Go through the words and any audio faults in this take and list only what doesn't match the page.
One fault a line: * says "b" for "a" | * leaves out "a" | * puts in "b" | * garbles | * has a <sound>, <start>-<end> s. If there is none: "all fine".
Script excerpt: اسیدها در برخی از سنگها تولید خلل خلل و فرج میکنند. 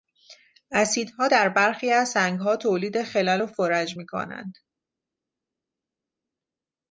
* leaves out "خلل"